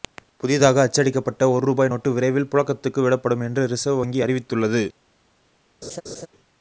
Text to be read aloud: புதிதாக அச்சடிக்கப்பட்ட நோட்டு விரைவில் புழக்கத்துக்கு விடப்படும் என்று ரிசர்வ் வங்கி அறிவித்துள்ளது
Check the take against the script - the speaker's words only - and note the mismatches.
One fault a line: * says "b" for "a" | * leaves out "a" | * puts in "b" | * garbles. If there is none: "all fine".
* puts in "ஒரு ரூபாய்"